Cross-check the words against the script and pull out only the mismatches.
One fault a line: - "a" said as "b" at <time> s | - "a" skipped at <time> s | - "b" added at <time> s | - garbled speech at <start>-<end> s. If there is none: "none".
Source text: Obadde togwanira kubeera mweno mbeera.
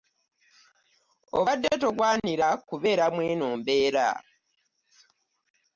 none